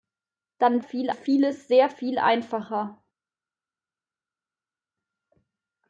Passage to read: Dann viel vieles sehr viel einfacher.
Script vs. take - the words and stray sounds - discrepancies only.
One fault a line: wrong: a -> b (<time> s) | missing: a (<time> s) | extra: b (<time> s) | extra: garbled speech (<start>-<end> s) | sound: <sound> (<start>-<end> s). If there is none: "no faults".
no faults